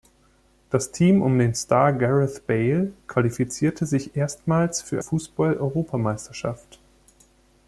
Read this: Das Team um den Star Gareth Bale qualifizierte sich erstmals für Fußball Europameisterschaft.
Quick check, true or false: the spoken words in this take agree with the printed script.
true